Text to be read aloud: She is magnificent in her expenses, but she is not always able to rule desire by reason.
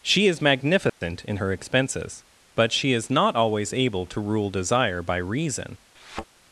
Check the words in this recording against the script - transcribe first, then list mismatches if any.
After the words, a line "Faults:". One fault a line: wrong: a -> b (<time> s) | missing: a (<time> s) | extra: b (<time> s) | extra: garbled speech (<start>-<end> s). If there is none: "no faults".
She is magnificent in her expenses, but she is not always able to rule desire by reason.
Faults:
no faults